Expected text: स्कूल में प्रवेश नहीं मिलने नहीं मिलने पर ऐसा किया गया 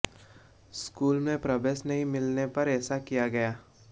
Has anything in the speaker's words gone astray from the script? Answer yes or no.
yes